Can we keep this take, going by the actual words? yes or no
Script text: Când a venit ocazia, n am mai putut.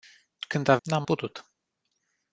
no